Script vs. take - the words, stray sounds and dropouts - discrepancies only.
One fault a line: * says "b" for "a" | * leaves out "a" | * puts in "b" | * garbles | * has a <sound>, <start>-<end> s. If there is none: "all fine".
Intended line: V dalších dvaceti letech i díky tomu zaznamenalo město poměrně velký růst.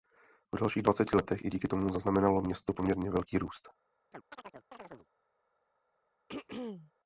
* has a chirp, 4.1-5.1 s
* has a throat clearing, 6.3-6.9 s